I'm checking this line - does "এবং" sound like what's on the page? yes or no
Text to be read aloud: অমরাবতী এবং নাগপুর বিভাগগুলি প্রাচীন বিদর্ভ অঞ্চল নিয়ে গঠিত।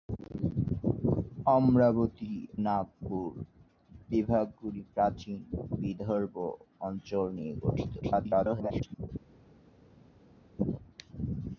no